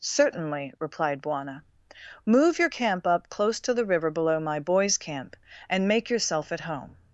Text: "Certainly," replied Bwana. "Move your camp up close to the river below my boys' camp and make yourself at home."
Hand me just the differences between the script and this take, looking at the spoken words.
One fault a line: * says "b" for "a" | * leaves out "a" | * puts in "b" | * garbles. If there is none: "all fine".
all fine